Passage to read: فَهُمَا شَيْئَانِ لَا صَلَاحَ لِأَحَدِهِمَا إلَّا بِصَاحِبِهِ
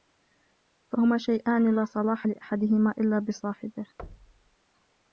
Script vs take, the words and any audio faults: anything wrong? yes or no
yes